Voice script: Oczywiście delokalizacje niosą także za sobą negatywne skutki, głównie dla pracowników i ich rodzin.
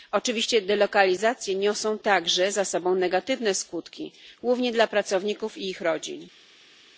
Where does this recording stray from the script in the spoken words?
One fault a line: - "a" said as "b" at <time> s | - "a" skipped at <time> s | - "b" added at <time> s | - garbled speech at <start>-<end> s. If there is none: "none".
none